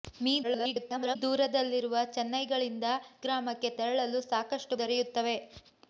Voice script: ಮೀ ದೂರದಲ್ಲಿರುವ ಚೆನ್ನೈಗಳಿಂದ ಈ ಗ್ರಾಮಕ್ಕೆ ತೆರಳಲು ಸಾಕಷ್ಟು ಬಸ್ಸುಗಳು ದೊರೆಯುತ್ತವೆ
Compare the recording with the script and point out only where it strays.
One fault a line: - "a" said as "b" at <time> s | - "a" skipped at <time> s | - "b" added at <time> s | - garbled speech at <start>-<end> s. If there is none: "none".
- garbled speech at 0.4-1.2 s
- "ಈ" skipped at 2.9 s
- "ಬಸ್ಸುಗಳು" skipped at 4.8 s